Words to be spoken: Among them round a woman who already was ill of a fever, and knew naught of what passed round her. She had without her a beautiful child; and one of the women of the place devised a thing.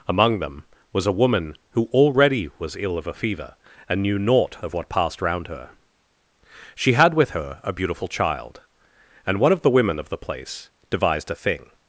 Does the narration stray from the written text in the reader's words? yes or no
yes